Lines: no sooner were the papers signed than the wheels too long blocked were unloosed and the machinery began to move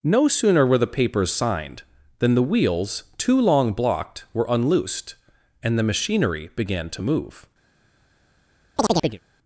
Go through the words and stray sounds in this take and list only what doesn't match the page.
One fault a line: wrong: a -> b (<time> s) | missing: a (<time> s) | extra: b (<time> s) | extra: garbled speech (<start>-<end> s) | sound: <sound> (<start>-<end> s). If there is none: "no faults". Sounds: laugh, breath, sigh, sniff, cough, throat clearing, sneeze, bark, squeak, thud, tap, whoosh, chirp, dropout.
sound: chirp (8.8-9.2 s)